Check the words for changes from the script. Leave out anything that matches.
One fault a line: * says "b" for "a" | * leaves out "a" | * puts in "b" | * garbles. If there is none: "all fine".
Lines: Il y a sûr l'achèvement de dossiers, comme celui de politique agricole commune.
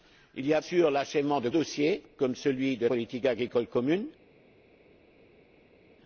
all fine